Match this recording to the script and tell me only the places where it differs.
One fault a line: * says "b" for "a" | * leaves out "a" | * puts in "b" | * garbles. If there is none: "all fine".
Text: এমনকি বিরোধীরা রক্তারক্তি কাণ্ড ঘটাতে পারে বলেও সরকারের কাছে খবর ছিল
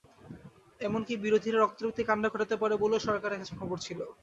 all fine